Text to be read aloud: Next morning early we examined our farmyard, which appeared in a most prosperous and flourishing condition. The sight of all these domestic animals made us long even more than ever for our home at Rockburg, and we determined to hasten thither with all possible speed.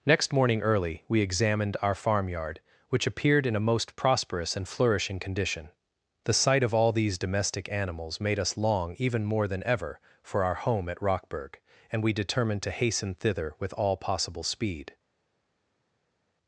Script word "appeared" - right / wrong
right